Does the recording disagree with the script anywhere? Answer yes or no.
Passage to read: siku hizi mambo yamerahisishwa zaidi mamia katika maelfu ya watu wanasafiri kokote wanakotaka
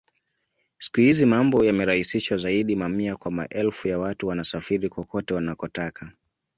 yes